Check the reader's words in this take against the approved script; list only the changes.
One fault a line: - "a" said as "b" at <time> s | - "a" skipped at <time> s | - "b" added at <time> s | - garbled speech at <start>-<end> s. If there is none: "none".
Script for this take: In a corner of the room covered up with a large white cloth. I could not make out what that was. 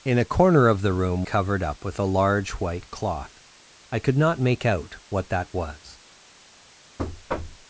none